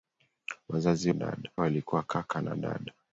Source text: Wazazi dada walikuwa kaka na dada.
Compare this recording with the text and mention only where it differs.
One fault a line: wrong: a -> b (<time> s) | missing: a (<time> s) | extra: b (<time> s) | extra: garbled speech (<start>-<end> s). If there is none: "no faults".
no faults